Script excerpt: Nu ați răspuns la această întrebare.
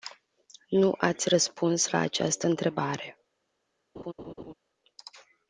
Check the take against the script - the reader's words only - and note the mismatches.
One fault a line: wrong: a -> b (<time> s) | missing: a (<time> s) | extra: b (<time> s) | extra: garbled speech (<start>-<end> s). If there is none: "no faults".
no faults